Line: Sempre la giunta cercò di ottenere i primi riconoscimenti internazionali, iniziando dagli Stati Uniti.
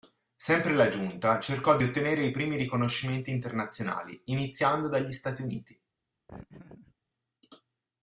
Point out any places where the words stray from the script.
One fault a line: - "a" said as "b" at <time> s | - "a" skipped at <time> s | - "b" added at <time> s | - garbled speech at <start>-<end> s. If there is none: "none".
none